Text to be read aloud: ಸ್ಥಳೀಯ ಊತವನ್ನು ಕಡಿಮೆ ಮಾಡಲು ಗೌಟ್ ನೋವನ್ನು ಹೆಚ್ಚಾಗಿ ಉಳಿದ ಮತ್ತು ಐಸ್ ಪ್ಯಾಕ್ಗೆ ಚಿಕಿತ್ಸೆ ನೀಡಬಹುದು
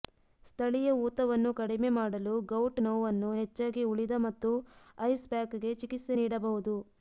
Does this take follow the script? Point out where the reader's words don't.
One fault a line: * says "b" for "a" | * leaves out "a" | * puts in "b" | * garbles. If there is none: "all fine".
all fine